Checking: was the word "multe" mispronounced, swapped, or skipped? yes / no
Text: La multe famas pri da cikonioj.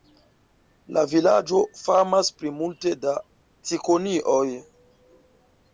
yes